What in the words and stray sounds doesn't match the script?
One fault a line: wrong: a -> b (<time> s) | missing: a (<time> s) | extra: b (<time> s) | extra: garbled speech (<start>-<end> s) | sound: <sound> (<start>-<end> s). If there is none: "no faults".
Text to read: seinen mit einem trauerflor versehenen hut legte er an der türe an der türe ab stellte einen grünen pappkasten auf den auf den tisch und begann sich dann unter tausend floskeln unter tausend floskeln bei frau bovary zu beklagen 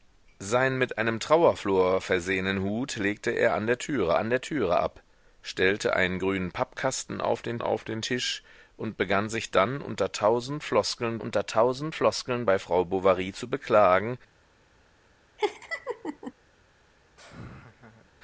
sound: laugh (15.4-16.3 s)
sound: laugh (17.2-18.1 s)